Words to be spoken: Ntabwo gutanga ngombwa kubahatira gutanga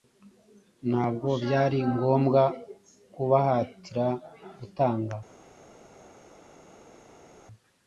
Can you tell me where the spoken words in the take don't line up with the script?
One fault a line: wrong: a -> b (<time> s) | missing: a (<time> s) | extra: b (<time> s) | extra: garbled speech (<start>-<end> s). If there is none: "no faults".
wrong: gutanga -> byari (1.4 s)